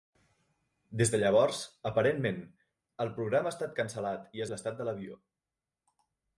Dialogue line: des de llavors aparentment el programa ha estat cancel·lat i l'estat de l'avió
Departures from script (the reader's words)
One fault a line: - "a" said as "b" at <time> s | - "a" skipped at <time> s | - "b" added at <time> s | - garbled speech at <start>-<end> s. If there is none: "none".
none